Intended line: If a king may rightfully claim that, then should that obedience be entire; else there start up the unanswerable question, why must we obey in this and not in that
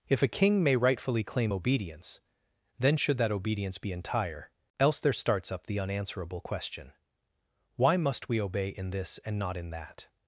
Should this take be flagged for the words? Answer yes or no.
yes